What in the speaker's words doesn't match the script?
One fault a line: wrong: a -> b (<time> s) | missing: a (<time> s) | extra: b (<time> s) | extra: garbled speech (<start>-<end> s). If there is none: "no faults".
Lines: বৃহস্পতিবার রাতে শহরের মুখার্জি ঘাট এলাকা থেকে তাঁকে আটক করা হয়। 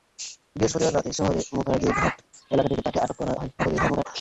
extra: garbled speech (3.6-4.0 s)